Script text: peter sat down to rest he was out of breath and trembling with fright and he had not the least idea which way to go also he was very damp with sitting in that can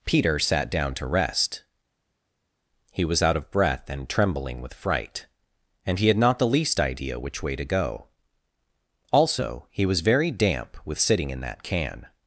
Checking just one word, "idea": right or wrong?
right